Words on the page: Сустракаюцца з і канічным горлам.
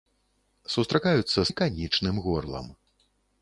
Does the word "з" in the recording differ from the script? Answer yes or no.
no